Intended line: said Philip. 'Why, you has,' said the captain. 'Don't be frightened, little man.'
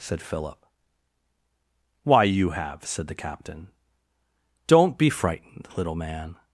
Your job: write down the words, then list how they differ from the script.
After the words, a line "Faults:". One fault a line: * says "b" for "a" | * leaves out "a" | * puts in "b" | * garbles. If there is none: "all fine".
said Philip. 'Why, you have,' said the captain. 'Don't be frightened, little man.'
Faults:
* says "have" for "has"